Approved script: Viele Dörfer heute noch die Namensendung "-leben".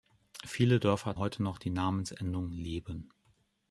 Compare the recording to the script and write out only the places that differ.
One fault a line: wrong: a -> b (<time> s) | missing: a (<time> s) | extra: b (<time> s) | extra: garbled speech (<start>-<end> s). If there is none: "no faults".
no faults